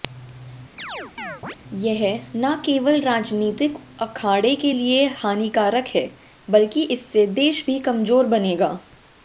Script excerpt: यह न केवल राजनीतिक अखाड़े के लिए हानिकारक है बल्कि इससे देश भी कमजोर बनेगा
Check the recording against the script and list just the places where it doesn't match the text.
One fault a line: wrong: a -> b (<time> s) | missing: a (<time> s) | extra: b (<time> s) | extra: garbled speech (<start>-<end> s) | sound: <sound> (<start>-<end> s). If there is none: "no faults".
sound: chirp (0.8-1.6 s)